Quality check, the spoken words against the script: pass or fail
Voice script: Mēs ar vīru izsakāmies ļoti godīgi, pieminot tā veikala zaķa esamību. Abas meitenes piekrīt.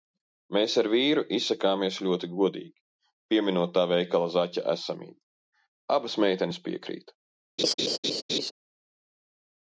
pass